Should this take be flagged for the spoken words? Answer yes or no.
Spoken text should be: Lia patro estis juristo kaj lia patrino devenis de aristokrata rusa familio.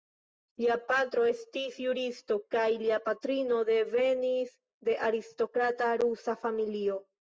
no